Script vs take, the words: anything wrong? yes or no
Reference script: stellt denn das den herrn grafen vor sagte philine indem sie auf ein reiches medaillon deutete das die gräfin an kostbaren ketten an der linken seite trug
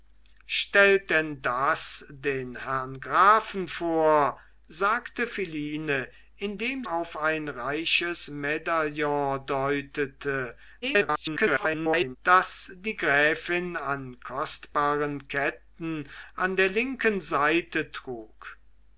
yes